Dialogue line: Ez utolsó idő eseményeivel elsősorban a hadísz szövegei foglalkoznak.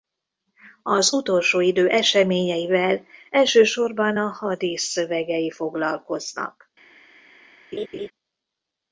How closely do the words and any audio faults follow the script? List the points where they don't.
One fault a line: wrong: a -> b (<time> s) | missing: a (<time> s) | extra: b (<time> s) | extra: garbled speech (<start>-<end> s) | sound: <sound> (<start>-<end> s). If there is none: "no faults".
wrong: Ez -> Az (0.8 s)
sound: laugh (7.7-8.1 s)